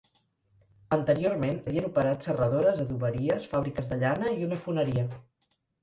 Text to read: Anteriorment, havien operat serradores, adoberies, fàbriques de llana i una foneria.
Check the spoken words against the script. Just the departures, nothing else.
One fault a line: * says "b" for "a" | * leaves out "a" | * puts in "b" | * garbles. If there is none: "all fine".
all fine